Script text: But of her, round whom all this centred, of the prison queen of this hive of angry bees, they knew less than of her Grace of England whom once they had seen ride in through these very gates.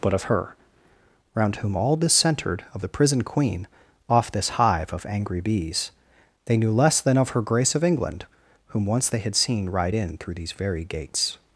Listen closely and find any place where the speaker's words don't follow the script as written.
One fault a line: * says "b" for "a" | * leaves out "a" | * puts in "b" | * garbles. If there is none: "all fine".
* says "off" for "of"